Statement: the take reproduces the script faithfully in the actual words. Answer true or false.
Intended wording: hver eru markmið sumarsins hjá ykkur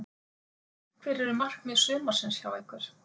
true